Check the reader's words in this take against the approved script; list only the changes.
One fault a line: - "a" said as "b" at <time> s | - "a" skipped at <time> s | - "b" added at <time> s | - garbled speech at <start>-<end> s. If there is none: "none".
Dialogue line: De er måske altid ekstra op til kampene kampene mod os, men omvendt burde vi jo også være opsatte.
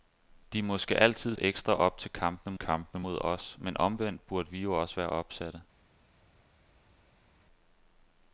none